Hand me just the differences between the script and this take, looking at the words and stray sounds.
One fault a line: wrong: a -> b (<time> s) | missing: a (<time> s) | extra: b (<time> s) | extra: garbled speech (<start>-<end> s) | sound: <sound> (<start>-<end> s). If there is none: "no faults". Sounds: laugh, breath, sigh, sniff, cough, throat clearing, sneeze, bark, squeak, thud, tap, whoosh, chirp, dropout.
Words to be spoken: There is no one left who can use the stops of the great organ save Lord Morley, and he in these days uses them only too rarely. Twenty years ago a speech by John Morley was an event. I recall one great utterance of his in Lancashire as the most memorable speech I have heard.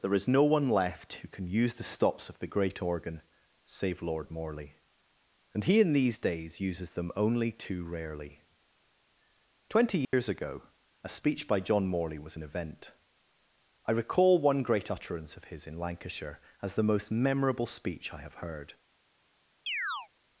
sound: dropout (10.0-10.1 s)
sound: chirp (19.7-20.1 s)